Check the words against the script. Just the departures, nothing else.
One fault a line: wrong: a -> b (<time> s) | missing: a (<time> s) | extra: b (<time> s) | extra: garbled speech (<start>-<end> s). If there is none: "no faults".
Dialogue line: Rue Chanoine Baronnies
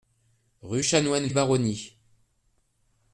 no faults